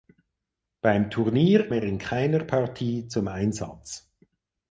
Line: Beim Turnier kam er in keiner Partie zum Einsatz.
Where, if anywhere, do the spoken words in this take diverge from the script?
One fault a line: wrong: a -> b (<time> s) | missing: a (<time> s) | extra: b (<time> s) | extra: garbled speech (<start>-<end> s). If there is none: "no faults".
missing: kam (1.7 s)